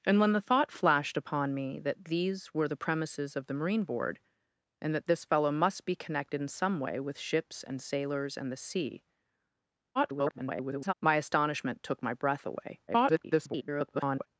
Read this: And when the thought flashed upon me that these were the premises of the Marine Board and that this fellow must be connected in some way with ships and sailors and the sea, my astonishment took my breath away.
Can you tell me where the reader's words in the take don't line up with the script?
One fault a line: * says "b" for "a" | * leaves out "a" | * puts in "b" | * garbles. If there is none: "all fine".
* garbles
* garbles